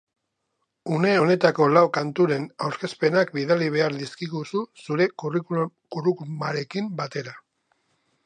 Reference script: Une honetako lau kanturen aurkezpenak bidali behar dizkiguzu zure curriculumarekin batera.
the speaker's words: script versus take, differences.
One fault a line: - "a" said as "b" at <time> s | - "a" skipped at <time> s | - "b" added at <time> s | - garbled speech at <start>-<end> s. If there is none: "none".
none